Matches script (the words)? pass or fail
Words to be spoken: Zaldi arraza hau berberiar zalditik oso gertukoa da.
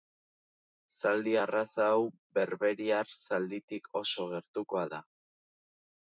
pass